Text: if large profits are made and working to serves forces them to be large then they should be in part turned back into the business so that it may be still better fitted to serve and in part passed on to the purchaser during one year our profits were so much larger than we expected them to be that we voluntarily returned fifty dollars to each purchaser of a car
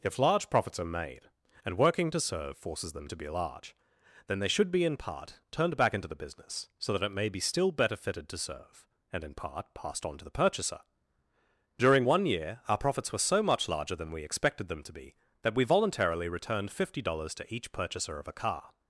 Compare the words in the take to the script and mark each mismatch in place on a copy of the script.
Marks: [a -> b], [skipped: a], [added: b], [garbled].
if large profits are made and working to [serves -> serve] forces them to be large then they should be in part turned back into the business so that it may be still better fitted to serve and in part passed on to the purchaser during one year our profits were so much larger than we expected them to be that we voluntarily returned fifty dollars to each purchaser of a car